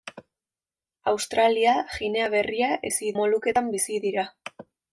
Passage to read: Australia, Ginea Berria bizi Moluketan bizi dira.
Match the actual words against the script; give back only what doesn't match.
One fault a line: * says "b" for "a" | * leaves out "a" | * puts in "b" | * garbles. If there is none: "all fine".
all fine